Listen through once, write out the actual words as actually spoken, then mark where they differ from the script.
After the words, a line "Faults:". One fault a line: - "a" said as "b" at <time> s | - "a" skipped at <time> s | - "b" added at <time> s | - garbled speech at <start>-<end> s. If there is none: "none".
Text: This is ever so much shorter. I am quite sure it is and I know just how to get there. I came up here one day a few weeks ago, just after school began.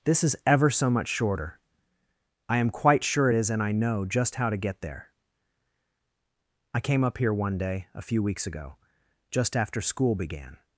This is ever so much shorter. I am quite sure it is and I know just how to get there. I came up here one day a few weeks ago, just after school began.
Faults:
none